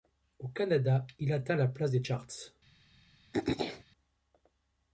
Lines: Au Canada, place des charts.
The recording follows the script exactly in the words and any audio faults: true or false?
false